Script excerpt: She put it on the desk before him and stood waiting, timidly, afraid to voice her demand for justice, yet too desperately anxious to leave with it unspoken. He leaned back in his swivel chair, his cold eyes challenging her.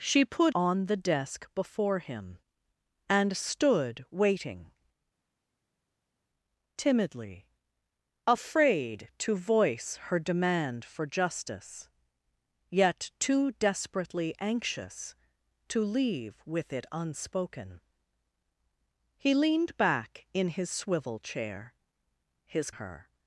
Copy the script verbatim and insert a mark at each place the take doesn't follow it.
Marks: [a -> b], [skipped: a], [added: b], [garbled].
She put [skipped: it] on the desk before him and stood waiting, timidly, afraid to voice her demand for justice, yet too desperately anxious to leave with it unspoken. He leaned back in his swivel chair, his [skipped: cold eyes challenging] her.